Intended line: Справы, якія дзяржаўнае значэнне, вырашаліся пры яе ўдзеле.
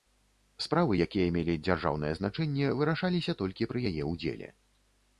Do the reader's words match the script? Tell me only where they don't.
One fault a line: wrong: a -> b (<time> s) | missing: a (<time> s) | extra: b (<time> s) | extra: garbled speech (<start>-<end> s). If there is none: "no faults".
extra: мелі (1.4 s)
extra: толькі (3.4 s)